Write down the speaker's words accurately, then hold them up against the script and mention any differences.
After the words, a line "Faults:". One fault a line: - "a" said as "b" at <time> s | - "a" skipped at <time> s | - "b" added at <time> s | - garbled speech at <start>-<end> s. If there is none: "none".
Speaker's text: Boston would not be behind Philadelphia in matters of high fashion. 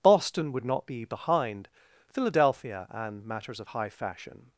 Boston would not be behind Philadelphia and matters of high fashion.
Faults:
- "in" said as "and" at 2.9 s